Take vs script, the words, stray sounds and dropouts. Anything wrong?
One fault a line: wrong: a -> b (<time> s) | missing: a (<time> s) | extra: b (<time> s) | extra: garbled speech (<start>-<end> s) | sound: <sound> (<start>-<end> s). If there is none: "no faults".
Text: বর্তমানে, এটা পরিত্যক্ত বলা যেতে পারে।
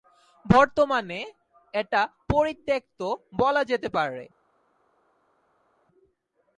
no faults